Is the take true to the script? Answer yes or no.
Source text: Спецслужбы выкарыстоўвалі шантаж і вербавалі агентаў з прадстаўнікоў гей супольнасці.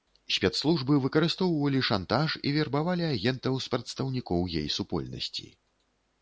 yes